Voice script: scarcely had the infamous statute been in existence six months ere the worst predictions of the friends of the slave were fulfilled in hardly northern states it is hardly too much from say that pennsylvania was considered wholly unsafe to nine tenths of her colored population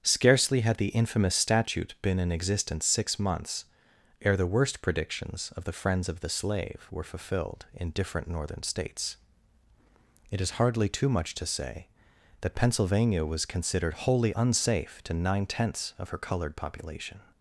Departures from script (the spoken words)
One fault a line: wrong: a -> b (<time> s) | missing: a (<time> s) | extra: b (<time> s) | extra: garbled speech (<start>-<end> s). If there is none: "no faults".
wrong: hardly -> different (7.9 s)
wrong: from -> to (11.3 s)